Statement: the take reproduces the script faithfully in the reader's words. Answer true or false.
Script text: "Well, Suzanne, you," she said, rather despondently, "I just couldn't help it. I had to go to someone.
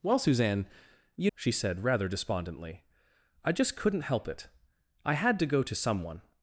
true